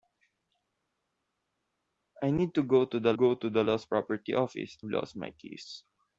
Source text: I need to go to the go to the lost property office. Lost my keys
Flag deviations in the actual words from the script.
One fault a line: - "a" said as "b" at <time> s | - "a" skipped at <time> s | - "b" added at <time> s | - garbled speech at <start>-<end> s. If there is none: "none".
none